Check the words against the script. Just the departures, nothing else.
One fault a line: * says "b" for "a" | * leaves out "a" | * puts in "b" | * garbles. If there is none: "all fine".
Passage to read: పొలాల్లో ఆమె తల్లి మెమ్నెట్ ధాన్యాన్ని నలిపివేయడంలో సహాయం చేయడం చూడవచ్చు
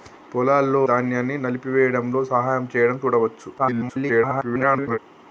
* leaves out "ఆమె తల్లి మెమ్నెట్"
* garbles